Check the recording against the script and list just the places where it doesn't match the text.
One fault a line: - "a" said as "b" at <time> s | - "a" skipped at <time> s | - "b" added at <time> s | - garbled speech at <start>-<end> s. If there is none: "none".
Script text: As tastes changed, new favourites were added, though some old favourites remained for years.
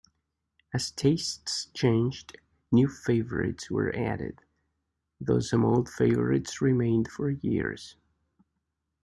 none